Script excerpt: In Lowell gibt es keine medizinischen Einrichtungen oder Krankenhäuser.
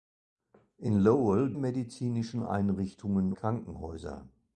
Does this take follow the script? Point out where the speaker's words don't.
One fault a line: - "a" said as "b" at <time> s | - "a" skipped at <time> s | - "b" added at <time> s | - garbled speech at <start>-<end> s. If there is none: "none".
- "gibt es keine" skipped at 1.5 s
- "oder" skipped at 3.3 s